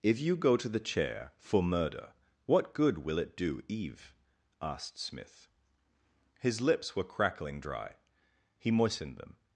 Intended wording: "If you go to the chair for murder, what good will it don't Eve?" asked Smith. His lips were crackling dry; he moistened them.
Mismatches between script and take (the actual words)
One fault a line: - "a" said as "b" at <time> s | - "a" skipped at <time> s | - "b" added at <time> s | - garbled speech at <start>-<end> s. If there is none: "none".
- "don't" said as "do" at 3.4 s